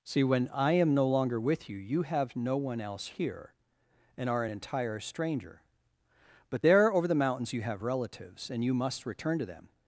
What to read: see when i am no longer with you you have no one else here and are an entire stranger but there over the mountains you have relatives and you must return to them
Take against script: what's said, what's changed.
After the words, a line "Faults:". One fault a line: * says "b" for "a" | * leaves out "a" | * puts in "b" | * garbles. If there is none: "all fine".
see when i am no longer with you you have no one else here and are an entire stranger but there over the mountains you have relatives and you must return to them
Faults:
all fine